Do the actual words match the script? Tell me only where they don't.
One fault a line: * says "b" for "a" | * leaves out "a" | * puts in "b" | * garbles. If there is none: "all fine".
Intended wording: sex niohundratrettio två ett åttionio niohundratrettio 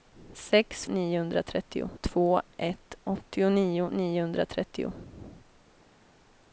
all fine